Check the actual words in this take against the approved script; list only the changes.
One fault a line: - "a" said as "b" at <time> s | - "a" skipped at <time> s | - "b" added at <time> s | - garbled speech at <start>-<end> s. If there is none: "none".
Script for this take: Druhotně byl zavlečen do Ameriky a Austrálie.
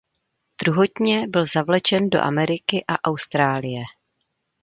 none